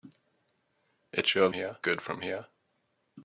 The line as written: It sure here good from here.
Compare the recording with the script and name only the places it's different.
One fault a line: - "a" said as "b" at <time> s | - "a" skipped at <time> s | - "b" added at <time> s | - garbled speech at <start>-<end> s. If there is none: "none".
none